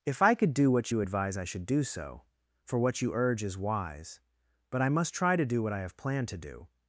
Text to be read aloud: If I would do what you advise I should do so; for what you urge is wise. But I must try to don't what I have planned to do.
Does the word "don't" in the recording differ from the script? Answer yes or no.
yes